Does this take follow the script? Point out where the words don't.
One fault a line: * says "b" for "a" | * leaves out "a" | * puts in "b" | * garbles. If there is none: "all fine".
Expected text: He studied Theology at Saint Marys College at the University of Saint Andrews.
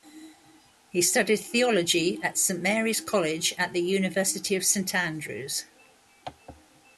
all fine